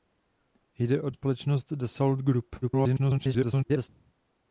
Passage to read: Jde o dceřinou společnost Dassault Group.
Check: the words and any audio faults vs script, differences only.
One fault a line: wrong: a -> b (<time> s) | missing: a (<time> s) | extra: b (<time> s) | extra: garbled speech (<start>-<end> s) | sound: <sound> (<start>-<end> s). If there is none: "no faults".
missing: dceřinou (1.1 s)
extra: garbled speech (2.6-3.9 s)